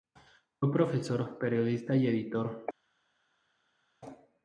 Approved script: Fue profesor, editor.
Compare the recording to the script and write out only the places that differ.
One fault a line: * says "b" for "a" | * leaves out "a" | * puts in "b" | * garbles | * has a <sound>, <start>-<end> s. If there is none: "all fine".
* puts in "periodista y"